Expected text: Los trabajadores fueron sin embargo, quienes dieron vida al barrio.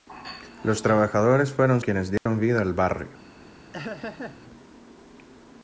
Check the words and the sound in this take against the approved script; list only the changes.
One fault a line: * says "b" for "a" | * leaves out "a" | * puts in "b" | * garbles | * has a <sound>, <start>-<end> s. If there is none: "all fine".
* leaves out "sin embargo"
* has a dropout, 2.2-2.3 s
* has a laugh, 3.7-4.4 s